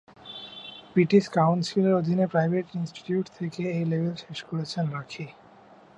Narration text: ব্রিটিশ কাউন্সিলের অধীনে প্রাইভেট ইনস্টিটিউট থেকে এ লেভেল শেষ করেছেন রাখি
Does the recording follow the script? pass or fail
pass